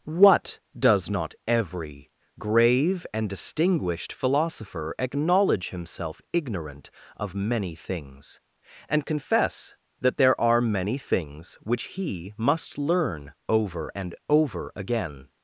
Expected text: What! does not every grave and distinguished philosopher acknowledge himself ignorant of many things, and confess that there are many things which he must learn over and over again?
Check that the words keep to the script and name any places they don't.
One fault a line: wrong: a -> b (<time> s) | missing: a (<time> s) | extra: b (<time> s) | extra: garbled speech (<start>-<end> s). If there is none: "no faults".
no faults